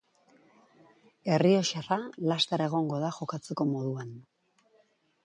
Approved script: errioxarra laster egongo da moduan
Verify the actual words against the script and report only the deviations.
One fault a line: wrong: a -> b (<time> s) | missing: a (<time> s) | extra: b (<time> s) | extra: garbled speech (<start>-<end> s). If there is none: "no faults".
extra: jokatzeko (3.2 s)